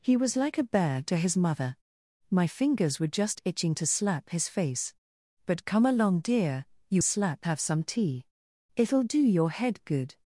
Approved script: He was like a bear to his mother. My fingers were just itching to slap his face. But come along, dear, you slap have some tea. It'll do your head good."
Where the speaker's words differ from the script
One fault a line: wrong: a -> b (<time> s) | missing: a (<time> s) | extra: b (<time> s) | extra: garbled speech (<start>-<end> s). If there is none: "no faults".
no faults